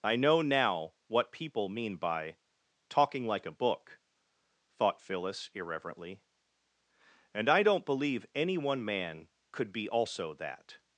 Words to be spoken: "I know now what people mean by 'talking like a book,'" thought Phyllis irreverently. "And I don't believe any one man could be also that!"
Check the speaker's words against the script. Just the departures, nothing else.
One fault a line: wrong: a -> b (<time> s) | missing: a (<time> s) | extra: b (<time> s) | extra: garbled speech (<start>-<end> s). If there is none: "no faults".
no faults